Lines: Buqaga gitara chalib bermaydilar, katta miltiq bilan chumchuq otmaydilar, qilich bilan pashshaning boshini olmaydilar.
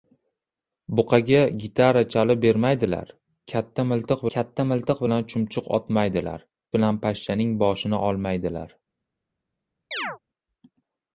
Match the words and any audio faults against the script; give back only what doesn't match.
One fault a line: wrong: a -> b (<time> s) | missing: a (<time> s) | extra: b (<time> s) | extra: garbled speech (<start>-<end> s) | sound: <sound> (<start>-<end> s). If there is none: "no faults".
extra: katta miltiq (4.3 s)
missing: qilich (6.5 s)
sound: chirp (9.9-10.2 s)